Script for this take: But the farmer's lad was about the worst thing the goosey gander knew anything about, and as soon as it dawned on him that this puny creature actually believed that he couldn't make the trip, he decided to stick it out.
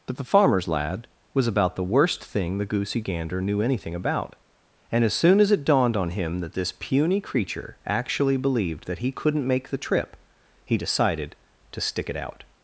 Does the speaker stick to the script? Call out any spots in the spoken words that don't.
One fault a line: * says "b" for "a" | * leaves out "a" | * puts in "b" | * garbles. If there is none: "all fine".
all fine